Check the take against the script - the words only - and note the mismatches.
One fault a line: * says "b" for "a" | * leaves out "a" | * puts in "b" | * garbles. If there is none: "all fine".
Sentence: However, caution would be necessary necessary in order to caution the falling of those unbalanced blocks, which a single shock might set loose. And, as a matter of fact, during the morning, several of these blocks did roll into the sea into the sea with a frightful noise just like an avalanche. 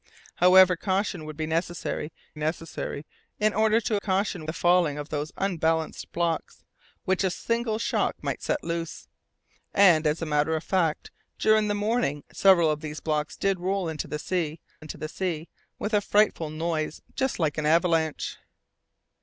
all fine